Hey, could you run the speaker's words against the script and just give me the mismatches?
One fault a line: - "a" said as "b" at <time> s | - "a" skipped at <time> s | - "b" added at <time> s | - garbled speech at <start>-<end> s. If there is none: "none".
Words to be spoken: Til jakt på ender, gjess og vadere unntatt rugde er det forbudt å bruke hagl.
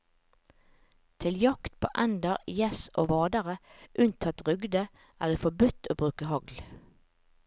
none